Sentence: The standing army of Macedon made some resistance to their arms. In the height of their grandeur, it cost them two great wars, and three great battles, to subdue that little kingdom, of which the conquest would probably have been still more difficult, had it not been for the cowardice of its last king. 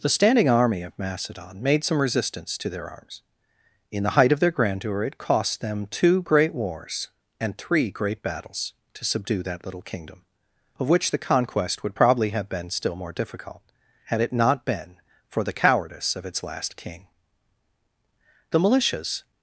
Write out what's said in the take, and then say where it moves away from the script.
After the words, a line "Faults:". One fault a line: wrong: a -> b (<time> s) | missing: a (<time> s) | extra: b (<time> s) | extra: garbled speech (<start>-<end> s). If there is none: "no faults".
The standing army of Macedon made some resistance to their arms. In the height of their grandeur, it cost them two great wars, and three great battles, to subdue that little kingdom, of which the conquest would probably have been still more difficult, had it not been for the cowardice of its last king. The militias
Faults:
extra: The militias (18.5 s)